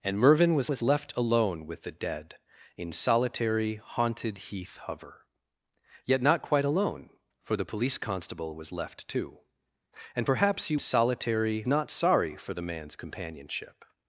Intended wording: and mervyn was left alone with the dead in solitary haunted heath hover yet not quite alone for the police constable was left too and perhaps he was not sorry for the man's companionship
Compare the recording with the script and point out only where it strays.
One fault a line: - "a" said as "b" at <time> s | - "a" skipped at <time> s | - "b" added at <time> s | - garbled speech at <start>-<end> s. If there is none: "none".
- "was" added at 0.7 s
- "was" said as "solitary" at 10.8 s